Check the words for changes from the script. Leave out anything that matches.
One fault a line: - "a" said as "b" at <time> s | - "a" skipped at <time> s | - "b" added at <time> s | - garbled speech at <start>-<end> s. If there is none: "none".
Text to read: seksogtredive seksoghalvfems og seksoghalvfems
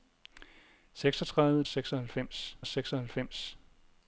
none